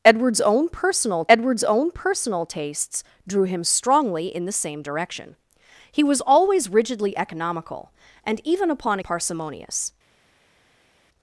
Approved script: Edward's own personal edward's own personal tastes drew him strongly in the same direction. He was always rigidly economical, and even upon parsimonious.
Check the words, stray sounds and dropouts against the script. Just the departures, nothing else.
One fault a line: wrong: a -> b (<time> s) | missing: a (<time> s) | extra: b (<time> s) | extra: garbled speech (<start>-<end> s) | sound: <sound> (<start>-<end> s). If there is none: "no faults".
no faults